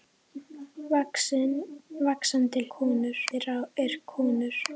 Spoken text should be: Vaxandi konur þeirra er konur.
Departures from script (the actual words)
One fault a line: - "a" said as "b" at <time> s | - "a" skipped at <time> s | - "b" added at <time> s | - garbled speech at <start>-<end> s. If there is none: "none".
none